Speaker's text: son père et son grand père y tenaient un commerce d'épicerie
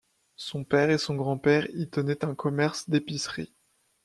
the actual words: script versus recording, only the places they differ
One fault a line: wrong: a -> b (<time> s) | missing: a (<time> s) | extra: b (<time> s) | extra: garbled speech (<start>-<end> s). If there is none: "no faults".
no faults